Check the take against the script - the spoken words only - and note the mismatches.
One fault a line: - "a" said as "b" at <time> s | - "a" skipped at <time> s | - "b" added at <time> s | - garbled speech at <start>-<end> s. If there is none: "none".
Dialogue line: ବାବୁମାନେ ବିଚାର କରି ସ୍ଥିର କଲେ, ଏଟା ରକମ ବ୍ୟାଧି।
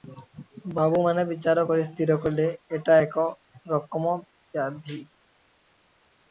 - "ଏକ" added at 3.0 s